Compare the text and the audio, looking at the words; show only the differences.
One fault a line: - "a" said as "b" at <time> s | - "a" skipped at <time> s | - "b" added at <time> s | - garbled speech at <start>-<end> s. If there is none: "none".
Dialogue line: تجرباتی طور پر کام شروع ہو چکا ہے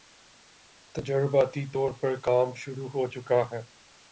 none